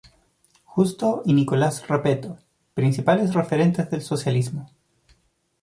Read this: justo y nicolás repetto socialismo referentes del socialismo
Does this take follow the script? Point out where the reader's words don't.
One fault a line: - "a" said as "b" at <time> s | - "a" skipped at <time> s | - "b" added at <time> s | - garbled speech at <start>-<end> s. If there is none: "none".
- "socialismo" said as "principales" at 2.7 s